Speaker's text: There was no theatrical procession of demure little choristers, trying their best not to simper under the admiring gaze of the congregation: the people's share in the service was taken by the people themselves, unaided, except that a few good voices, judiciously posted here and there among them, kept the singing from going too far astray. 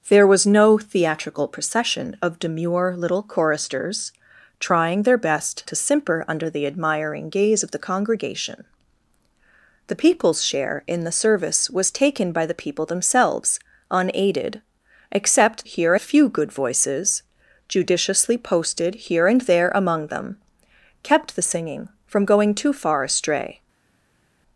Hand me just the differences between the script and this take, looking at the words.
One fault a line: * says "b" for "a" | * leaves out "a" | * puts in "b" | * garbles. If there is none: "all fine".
* leaves out "not"
* says "here" for "that"